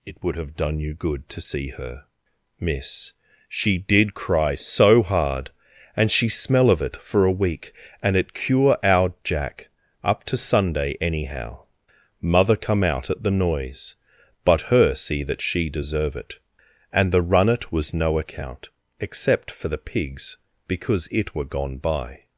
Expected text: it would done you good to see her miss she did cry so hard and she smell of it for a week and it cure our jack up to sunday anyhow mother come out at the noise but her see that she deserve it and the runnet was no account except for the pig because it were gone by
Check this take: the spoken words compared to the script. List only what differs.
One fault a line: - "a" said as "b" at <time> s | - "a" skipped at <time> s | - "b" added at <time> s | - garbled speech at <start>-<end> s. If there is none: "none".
- "have" added at 0.3 s
- "pig" said as "pigs" at 19.8 s